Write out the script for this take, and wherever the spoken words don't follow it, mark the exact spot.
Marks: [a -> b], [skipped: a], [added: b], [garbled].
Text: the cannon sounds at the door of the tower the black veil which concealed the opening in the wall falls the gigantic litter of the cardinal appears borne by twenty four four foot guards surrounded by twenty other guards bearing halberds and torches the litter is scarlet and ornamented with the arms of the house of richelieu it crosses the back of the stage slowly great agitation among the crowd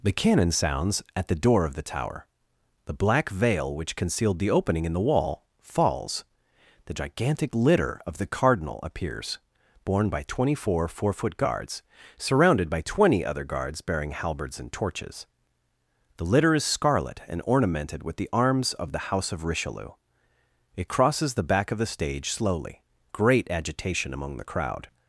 the cannon sounds at the door of the tower the black veil which concealed the opening in the wall falls the gigantic litter of the cardinal appears borne by twenty four four foot guards surrounded by twenty other guards bearing halberds and torches the litter is scarlet and ornamented with the arms of the house of richelieu it crosses the back of the stage slowly great agitation among the crowd